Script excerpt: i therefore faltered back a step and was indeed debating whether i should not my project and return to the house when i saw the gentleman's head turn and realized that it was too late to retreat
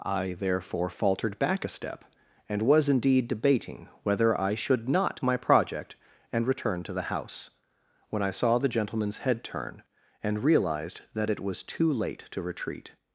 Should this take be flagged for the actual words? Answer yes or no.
no